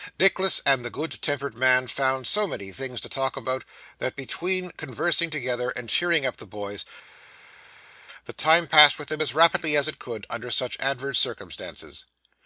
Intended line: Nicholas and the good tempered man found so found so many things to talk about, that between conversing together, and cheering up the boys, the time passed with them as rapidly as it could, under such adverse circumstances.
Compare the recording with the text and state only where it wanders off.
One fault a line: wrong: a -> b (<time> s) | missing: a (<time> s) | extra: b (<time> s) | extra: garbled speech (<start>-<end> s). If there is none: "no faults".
missing: found so (2.5 s)